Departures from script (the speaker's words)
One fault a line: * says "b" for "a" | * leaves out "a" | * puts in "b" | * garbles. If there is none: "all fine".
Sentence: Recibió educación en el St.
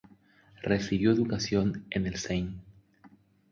all fine